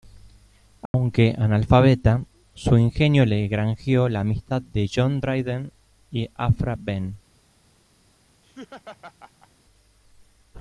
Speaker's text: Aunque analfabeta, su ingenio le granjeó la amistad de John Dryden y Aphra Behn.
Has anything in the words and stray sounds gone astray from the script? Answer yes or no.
yes